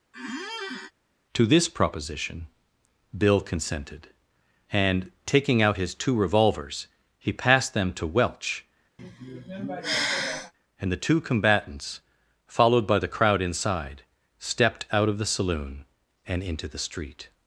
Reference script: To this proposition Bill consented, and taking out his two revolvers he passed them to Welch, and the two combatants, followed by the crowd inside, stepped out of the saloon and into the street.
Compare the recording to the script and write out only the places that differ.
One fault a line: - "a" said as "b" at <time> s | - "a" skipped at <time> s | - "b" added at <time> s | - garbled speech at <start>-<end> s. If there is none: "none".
none